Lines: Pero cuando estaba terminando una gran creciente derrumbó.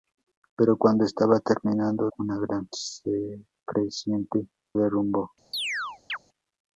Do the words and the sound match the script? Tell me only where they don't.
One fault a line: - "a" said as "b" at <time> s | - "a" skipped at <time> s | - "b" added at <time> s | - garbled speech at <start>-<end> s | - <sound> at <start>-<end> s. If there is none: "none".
- chirp at 5.5-6.2 s